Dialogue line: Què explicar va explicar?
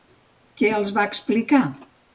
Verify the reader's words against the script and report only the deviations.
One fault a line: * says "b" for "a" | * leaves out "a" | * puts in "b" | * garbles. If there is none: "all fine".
* says "els" for "explicar"